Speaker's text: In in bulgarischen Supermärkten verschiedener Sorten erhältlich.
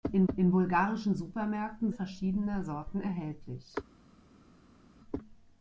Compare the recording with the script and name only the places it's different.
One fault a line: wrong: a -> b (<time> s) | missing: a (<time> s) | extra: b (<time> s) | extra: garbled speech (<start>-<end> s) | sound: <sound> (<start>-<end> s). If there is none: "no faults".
no faults